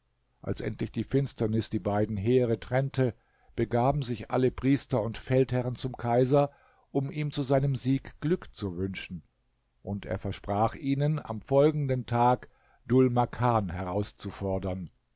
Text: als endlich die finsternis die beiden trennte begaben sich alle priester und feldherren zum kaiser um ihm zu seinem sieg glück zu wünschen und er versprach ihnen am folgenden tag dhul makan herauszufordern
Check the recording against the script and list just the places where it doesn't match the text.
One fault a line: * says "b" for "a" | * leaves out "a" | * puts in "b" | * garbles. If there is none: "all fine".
* puts in "heere"